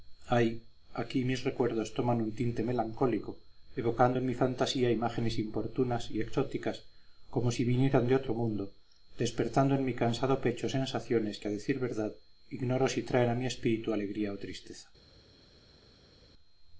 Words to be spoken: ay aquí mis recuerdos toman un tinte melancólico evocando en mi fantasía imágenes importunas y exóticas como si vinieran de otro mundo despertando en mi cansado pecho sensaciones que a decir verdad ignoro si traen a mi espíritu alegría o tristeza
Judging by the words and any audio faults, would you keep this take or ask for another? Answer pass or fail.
pass